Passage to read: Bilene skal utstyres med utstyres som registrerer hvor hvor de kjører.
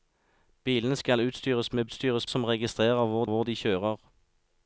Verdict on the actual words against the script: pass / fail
pass